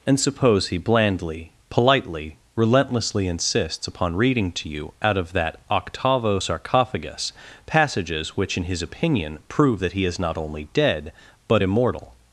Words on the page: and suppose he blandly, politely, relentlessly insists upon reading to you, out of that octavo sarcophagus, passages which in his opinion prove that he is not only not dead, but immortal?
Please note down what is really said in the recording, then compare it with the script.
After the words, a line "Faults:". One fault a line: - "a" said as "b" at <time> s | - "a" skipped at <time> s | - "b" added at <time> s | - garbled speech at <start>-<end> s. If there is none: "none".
and suppose he blandly, politely, relentlessly insists upon reading to you, out of that octavo sarcophagus, passages which in his opinion prove that he is not only dead, but immortal?
Faults:
- "not" skipped at 10.7 s